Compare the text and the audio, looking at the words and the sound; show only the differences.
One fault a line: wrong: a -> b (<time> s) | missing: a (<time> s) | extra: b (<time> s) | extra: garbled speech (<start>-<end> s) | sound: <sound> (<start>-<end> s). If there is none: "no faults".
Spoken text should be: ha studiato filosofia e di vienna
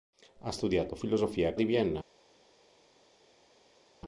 no faults